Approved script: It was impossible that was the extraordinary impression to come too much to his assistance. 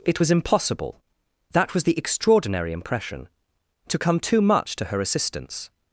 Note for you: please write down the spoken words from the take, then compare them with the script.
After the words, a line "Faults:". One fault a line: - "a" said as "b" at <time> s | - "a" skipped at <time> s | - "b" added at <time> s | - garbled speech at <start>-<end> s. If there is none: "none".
It was impossible that was the extraordinary impression to come too much to her assistance.
Faults:
- "his" said as "her" at 4.8 s